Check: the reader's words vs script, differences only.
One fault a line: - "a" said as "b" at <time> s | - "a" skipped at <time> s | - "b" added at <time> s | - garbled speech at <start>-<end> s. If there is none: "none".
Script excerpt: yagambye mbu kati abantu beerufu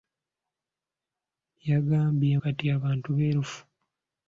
- "mbu" skipped at 2.3 s